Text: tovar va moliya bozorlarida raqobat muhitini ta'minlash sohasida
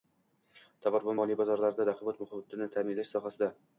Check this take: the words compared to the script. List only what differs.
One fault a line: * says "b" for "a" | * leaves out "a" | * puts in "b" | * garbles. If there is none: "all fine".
all fine